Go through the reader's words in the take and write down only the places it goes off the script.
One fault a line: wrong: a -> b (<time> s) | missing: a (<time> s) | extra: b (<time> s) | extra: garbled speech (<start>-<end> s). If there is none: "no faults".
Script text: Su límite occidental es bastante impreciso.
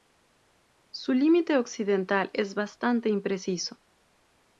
no faults